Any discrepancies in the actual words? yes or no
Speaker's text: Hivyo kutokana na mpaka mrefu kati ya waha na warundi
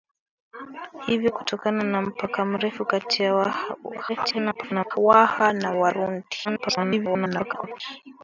yes